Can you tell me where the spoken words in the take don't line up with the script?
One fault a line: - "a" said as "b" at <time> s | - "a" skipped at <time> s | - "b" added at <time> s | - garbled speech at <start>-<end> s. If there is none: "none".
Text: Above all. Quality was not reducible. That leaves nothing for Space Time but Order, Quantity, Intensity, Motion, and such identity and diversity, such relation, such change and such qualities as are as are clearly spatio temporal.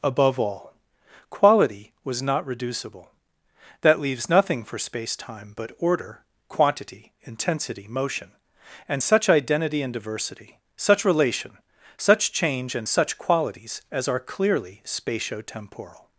- "as are" skipped at 14.2 s